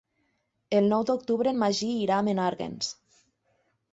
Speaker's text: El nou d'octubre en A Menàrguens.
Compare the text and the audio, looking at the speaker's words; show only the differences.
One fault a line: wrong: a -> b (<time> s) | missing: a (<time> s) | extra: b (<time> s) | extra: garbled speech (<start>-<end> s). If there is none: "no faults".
extra: Magí irà (1.6 s)